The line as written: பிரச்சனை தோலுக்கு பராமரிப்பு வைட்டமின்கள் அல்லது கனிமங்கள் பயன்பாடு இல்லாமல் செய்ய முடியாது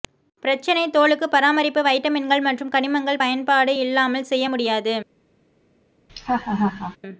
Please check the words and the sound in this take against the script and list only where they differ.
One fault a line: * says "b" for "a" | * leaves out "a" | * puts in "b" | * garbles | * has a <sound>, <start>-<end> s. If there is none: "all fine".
* says "மற்றும்" for "அல்லது"
* has a laugh, 6.1-7.0 s